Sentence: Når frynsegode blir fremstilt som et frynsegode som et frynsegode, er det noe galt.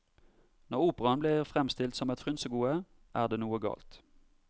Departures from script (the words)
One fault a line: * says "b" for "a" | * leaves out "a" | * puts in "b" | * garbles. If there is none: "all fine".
* says "operaen" for "frynsegode"
* leaves out "som et frynsegode"